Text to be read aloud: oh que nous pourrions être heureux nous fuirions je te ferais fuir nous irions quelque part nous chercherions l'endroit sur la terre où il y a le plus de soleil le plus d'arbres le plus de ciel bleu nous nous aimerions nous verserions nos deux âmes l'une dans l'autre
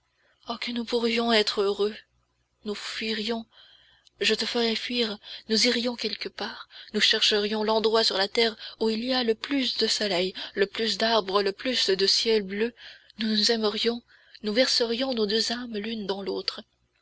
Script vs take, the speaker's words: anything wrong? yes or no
no